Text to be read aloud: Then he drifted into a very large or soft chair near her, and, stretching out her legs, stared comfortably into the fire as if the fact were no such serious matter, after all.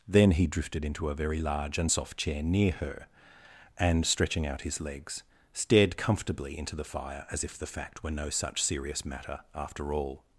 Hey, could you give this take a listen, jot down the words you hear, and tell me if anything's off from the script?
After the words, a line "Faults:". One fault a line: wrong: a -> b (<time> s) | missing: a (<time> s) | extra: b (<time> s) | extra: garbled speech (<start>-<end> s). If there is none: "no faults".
Then he drifted into a very large and soft chair near her, and, stretching out his legs, stared comfortably into the fire as if the fact were no such serious matter, after all.
Faults:
wrong: or -> and (1.8 s)
wrong: her -> his (4.6 s)